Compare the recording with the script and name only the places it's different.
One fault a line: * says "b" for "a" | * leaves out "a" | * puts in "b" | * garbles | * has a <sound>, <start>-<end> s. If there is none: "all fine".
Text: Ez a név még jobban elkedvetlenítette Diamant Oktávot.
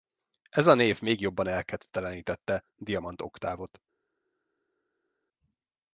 all fine